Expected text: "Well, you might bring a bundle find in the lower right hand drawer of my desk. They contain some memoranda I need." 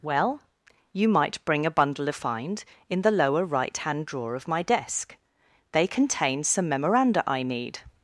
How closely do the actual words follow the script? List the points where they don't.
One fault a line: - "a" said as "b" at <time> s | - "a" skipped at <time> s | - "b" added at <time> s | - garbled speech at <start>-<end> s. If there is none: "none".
none